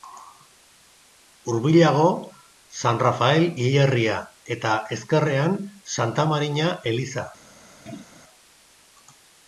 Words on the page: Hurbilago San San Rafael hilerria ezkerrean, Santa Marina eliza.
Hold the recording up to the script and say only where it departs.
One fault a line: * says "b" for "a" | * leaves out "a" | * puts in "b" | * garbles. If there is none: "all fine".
* leaves out "San"
* puts in "eta"